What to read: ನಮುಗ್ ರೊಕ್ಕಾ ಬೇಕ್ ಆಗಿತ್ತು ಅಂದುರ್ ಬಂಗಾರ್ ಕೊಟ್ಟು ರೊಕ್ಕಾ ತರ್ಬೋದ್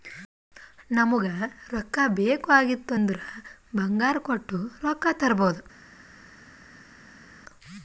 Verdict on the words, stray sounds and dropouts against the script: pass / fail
pass